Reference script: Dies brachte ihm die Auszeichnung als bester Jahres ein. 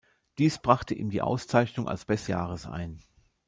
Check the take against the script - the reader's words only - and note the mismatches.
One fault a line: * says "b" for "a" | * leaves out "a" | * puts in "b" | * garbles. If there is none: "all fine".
all fine